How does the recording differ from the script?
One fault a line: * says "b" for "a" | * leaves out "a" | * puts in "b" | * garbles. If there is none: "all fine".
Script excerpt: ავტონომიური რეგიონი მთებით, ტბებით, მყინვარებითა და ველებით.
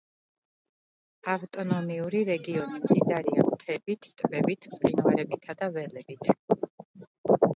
* puts in "მდიდარია"